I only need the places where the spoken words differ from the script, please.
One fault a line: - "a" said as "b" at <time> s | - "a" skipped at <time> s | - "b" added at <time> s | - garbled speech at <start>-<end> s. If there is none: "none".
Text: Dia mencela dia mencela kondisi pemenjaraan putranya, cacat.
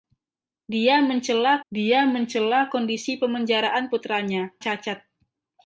none